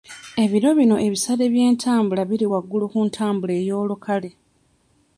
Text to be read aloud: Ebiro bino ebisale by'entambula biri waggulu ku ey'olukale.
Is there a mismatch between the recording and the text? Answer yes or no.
yes